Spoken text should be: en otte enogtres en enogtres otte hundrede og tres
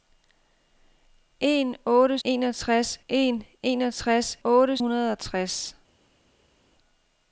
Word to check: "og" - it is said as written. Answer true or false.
true